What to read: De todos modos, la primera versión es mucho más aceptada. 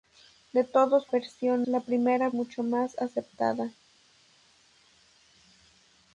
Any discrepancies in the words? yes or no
yes